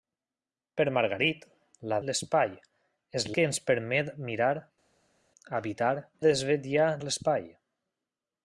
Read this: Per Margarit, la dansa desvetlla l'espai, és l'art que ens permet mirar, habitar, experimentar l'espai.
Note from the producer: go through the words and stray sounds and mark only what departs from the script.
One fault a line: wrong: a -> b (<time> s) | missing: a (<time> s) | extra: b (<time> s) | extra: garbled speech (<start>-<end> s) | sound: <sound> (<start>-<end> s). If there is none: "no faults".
missing: dansa desvetlla (2.0 s)
missing: l'art (3.3 s)
wrong: experimentar -> desvetlla (6.2 s)